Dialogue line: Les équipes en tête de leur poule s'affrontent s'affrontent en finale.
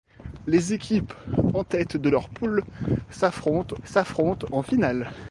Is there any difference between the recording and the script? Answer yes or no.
no